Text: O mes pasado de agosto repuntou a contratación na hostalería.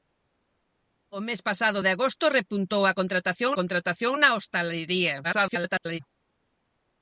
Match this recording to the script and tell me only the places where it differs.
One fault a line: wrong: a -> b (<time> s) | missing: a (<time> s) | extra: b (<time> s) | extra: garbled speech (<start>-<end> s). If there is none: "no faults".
extra: contratación (3.6 s)
extra: garbled speech (5.2-6.0 s)